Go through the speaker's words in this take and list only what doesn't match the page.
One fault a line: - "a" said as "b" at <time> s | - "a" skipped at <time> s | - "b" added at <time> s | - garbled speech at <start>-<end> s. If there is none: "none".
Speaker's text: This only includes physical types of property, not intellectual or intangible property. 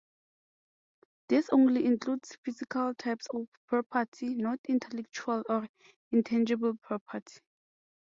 none